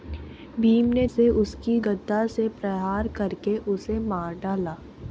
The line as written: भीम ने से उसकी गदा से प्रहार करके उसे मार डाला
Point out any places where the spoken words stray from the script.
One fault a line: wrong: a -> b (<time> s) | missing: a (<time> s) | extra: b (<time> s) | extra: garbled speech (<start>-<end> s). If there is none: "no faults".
no faults